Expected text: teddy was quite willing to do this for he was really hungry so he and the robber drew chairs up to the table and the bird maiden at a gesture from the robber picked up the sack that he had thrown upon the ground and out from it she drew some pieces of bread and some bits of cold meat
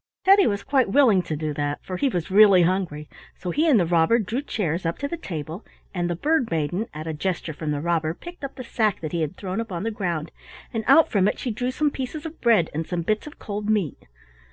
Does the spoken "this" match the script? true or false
false